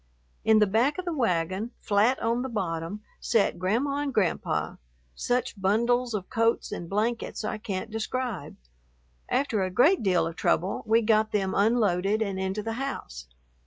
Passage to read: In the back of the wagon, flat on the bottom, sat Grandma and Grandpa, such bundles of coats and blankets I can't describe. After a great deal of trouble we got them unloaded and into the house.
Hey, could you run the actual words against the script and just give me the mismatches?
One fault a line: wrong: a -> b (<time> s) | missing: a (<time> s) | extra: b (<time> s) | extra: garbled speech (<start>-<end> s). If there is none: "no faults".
no faults